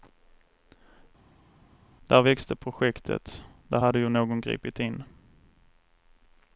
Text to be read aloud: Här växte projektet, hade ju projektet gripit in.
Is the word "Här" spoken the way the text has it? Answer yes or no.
no